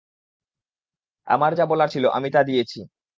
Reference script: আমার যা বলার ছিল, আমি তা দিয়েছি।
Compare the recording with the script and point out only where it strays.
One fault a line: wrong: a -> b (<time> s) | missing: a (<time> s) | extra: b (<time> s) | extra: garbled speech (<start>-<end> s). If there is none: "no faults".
no faults